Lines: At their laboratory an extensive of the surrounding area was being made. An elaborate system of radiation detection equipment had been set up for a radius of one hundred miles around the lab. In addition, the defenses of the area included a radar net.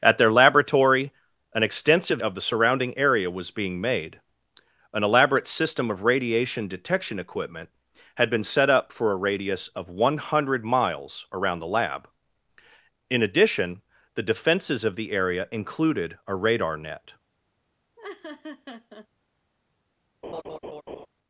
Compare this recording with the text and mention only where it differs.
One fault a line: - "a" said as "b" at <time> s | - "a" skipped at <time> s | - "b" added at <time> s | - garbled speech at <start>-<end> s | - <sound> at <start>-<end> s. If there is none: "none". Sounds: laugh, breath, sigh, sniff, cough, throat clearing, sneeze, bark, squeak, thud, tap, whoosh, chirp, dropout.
- laugh at 18.0-19.1 s
- laugh at 20.2-21.1 s